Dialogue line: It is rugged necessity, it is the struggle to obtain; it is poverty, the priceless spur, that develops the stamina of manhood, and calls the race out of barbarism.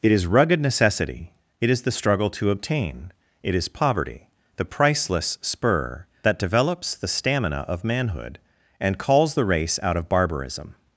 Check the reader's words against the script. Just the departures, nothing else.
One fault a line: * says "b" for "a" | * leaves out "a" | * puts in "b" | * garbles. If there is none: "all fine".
all fine